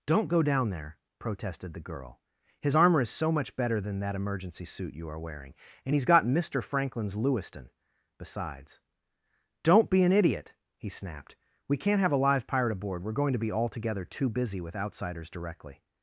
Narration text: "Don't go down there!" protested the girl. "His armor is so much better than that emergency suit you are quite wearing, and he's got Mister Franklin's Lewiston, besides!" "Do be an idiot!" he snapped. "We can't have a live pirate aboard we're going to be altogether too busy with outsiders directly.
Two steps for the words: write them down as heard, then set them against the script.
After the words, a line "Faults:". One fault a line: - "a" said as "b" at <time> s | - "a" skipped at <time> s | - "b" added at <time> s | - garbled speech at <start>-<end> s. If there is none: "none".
"Don't go down there!" protested the girl. "His armor is so much better than that emergency suit you are wearing, and he's got Mister Franklin's Lewiston, besides!" "Don't be an idiot!" he snapped. "We can't have a live pirate aboard we're going to be altogether too busy with outsiders directly.
Faults:
- "quite" skipped at 5.2 s
- "Do" said as "Don't" at 9.6 s